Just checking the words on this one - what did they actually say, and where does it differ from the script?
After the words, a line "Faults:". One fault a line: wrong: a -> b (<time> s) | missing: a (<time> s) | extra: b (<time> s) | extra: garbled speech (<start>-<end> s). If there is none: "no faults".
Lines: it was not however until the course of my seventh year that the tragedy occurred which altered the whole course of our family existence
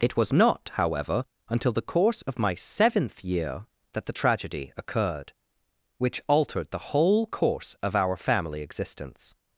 it was not however until the course of my seventh year that the tragedy occurred which altered the whole course of our family existence
Faults:
no faults